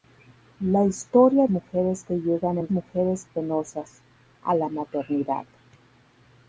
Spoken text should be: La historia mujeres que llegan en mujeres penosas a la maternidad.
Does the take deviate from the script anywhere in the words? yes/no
no